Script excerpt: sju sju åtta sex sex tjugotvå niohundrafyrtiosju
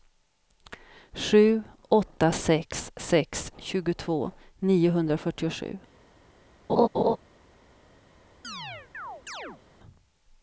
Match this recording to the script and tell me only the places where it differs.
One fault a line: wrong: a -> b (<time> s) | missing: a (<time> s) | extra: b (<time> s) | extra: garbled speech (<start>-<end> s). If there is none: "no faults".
missing: sju (1.6 s)